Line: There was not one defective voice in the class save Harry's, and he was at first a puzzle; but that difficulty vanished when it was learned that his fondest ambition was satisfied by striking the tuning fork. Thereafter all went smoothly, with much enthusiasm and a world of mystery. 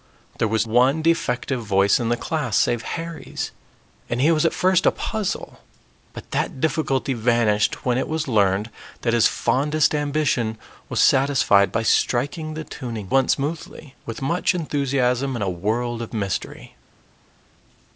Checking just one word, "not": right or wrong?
wrong